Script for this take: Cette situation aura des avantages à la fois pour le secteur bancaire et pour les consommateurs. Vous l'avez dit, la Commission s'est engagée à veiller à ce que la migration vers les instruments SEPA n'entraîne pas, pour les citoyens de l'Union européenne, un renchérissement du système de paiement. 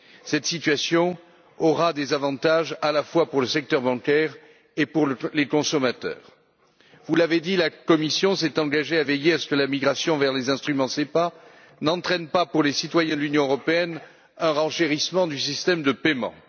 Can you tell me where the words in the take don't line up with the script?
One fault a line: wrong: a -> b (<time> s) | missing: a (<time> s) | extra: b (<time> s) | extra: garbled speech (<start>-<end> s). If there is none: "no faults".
no faults